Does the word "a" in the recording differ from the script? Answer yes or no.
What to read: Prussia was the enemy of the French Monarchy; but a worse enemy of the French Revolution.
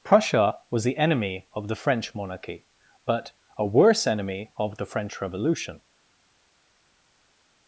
no